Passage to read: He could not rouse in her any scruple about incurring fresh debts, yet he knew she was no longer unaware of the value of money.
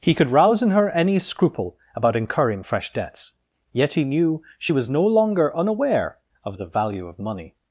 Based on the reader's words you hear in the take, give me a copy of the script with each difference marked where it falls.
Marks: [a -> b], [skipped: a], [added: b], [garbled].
He could [skipped: not] rouse in her any scruple about incurring fresh debts, yet he knew she was no longer unaware of the value of money.